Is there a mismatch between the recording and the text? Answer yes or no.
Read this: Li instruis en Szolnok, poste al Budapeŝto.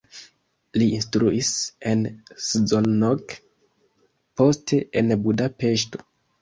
yes